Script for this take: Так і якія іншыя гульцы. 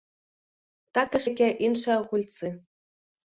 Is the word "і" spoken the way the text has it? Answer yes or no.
yes